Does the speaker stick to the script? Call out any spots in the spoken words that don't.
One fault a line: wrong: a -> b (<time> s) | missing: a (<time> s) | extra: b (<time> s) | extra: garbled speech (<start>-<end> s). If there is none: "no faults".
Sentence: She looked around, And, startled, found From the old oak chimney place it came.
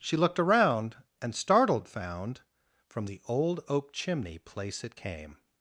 no faults